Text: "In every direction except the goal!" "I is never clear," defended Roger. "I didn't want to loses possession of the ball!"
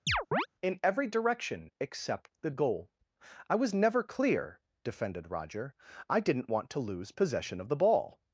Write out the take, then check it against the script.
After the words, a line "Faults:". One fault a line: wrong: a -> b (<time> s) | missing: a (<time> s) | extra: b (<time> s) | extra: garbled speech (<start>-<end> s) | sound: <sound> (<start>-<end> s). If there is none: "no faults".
"In every direction except the goal!" "I was never clear," defended Roger. "I didn't want to lose possession of the ball!"
Faults:
sound: chirp (0.1-0.5 s)
wrong: is -> was (3.5 s)
wrong: loses -> lose (6.8 s)